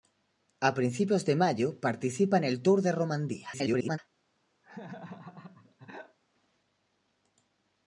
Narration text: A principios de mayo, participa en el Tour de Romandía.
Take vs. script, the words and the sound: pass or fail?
fail